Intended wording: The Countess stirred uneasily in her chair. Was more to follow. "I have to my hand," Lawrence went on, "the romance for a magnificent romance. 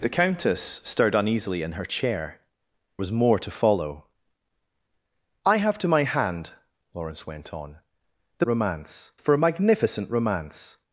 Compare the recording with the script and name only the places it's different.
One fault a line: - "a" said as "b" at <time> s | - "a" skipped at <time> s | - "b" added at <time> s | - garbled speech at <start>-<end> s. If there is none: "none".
none